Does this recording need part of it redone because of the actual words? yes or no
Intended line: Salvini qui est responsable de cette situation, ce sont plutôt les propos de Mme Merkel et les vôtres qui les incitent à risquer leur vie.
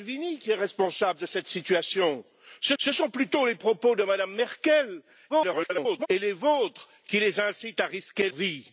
yes